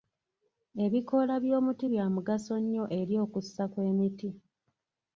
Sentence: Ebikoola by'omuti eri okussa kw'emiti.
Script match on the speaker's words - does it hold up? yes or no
no